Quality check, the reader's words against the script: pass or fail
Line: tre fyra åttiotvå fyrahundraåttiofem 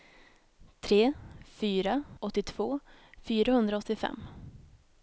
pass